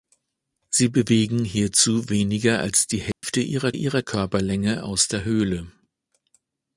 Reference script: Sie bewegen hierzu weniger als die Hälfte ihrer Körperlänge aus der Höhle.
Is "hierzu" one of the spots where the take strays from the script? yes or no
no